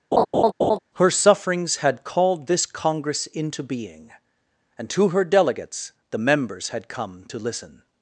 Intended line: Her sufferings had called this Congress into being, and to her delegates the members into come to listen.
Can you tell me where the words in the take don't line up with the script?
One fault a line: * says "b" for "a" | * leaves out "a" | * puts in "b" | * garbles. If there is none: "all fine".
* says "had" for "into"